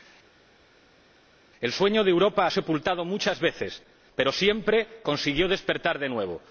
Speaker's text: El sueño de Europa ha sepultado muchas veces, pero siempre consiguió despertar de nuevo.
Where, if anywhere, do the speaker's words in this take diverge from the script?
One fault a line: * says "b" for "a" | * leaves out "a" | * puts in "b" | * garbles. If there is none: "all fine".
all fine